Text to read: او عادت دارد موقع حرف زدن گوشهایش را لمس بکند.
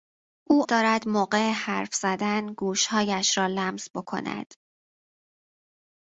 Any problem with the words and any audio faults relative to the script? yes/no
yes